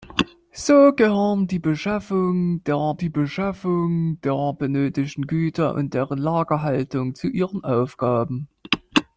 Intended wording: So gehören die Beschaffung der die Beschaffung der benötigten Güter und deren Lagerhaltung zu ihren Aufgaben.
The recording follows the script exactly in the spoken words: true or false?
true